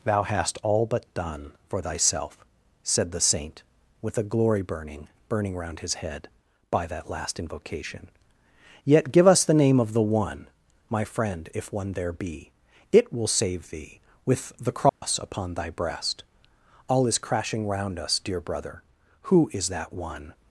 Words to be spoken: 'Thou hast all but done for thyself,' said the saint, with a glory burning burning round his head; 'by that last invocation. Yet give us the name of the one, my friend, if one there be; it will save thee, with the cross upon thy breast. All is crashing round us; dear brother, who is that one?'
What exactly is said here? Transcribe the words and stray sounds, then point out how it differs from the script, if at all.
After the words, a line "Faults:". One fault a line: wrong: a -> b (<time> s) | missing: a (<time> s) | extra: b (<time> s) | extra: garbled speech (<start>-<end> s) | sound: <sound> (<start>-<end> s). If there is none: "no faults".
'Thou hast all but done for thyself,' said the saint, with a glory burning burning round his head; 'by that last invocation. Yet give us the name of the one, my friend, if one there be; it will save thee, with the cross upon thy breast. All is crashing round us; dear brother, who is that one?'
Faults:
sound: dropout (14.9-15.0 s)